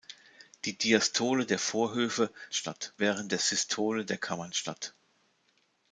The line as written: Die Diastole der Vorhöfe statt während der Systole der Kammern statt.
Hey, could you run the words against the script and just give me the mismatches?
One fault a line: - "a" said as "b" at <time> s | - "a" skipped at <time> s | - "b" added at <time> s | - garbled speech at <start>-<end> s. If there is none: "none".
none